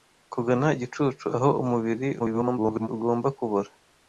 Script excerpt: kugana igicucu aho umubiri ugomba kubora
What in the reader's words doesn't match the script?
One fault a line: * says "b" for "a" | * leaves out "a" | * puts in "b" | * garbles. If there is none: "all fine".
* garbles